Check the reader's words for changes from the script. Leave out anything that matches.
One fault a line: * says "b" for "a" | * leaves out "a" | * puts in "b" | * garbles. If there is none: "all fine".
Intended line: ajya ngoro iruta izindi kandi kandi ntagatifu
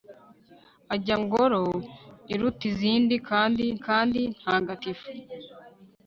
all fine